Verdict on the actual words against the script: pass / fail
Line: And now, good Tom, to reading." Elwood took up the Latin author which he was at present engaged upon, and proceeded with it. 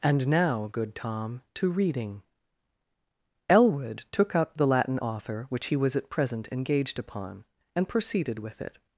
pass